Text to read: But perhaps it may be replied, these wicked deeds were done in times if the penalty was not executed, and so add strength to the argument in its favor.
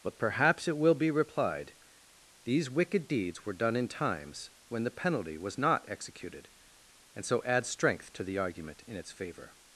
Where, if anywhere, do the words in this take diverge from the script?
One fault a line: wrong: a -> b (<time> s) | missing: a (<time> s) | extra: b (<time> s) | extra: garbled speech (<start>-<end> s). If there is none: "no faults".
wrong: may -> will (0.8 s)
wrong: if -> when (4.7 s)